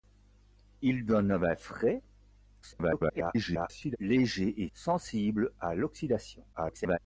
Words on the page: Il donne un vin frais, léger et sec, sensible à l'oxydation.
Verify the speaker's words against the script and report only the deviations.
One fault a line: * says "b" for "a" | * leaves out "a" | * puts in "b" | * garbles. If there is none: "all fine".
* garbles
* leaves out "sec"
* garbles